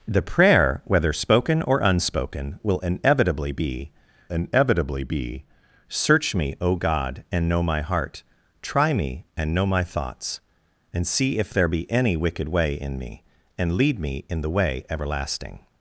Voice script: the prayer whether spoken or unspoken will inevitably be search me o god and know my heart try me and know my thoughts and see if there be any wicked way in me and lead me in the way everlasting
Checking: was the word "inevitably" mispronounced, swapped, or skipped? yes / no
no